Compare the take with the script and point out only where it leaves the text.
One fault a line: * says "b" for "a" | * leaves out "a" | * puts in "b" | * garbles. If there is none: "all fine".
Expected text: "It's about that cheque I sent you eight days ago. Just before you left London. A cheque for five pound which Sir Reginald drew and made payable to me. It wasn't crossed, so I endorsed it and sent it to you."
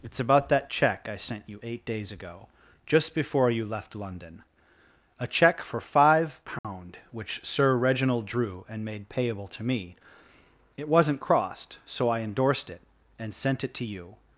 all fine